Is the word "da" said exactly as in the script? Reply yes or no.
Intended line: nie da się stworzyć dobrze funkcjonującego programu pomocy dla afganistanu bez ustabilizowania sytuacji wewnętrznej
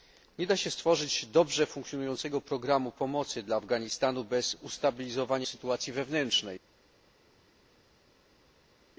yes